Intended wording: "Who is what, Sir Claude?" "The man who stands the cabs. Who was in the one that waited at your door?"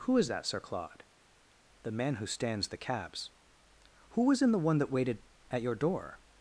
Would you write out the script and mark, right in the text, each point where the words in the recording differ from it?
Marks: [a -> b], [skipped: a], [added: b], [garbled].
"Who is [what, -> that] Sir Claude?" "The man who stands the cabs. Who was in the one that waited at your door?"